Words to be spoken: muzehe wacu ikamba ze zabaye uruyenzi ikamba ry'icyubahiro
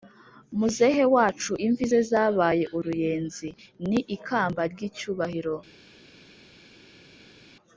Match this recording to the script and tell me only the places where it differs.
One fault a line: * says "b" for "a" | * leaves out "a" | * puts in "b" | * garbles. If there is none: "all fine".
* says "imvi" for "ikamba"
* puts in "ni"